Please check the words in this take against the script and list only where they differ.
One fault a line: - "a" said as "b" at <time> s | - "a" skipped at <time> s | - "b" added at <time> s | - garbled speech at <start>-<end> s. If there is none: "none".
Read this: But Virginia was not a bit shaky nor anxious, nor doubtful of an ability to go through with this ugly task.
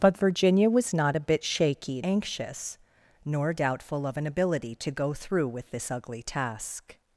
- "nor" skipped at 2.0 s